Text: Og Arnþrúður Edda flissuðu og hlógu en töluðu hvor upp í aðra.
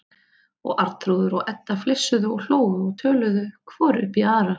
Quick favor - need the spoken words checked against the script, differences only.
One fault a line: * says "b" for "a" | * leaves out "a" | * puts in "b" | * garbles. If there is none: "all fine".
* puts in "og"
* says "og" for "en"